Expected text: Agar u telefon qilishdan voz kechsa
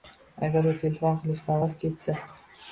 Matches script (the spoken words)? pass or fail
pass